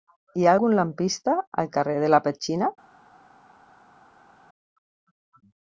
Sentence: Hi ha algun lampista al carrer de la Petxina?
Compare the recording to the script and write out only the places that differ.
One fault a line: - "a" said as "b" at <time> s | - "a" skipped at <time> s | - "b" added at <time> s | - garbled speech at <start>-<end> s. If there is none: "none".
none